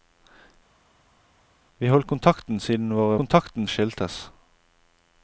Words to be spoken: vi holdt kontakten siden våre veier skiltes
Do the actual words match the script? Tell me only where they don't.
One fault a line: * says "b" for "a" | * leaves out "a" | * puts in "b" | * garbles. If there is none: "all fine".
* says "kontakten" for "veier"